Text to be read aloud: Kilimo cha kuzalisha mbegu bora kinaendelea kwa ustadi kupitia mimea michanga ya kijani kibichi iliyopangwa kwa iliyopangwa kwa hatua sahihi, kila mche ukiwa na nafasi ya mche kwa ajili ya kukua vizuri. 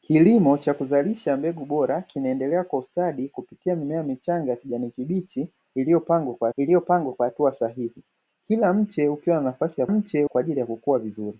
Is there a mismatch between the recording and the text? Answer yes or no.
no